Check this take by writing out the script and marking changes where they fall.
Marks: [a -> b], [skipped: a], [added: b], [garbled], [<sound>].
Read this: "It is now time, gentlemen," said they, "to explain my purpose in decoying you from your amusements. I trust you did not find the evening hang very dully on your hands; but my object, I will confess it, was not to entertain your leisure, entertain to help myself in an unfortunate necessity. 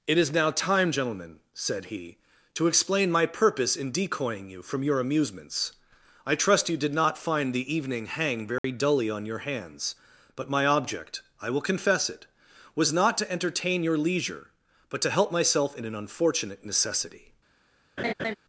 "It is now time, gentlemen," said [they, -> he] "to explain my purpose in decoying you from your amusements. I trust you did not find the evening hang very [dropout] dully on your hands; but my object, I will confess it, was not to entertain your leisure, [entertain -> but] to help myself in an unfortunate necessity. [laugh]